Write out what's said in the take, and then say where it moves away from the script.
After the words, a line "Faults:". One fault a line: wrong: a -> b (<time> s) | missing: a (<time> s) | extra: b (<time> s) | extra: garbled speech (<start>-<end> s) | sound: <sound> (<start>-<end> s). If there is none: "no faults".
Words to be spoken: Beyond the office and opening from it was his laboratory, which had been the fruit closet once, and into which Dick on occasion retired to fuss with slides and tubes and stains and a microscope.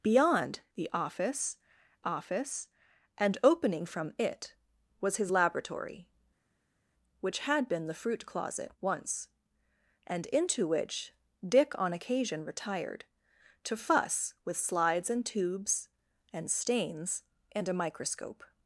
Beyond the office office and opening from it was his laboratory, which had been the fruit closet once, and into which Dick on occasion retired to fuss with slides and tubes and stains and a microscope.
Faults:
extra: office (2.0 s)